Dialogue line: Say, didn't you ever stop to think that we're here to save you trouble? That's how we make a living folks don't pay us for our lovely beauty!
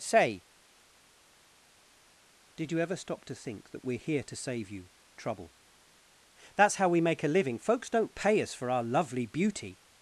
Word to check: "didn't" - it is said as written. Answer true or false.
false